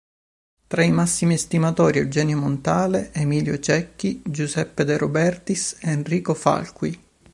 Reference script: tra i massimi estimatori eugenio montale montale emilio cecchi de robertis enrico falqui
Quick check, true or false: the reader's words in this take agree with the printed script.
false